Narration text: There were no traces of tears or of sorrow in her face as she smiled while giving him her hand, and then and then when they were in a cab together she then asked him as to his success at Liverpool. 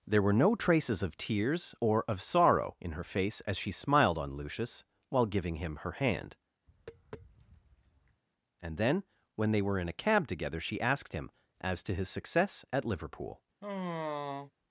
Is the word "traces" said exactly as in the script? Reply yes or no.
yes